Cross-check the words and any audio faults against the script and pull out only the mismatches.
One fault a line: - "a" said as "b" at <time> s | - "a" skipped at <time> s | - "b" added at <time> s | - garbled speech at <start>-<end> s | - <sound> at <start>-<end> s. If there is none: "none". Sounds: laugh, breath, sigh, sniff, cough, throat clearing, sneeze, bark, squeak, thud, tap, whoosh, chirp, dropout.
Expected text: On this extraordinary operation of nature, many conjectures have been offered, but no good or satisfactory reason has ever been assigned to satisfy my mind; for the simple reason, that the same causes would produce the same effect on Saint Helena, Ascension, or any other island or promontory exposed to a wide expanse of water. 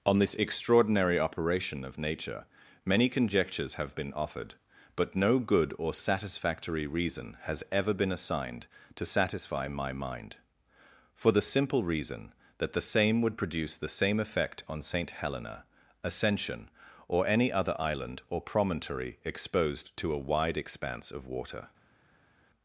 - "causes" skipped at 13.2 s